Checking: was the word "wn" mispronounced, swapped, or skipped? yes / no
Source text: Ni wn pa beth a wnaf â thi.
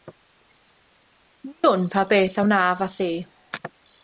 no